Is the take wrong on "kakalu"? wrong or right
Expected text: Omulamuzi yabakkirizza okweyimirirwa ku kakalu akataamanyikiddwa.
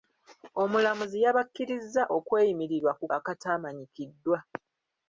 wrong